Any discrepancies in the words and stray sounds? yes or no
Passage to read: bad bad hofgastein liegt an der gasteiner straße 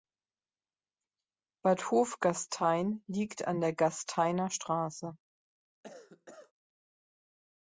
yes